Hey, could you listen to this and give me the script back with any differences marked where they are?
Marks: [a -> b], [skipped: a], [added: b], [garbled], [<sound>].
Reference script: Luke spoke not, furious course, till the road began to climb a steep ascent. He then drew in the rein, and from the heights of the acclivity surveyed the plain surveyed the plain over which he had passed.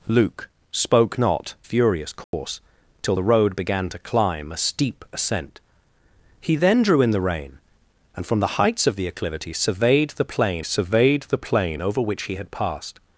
Luke spoke not, furious course, [dropout] till the road began to climb a steep ascent. He then drew in the rein, and from the heights of the acclivity surveyed the plain surveyed the plain over which he had passed.